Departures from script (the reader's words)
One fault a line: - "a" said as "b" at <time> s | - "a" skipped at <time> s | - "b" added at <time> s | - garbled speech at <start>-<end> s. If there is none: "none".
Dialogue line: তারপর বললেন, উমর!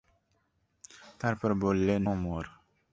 none